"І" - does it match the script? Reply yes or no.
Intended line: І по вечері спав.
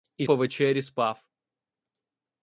yes